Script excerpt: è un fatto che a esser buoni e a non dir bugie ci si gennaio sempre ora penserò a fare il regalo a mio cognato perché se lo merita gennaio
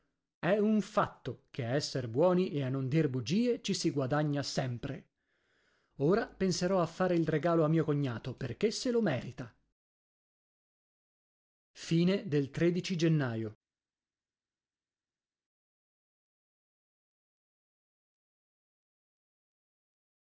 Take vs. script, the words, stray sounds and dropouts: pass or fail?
fail